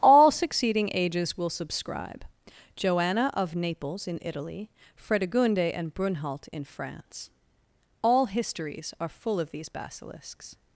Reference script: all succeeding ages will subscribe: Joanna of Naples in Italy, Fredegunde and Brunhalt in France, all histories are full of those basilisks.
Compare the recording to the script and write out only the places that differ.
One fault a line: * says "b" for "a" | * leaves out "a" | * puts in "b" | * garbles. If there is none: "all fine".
* says "these" for "those"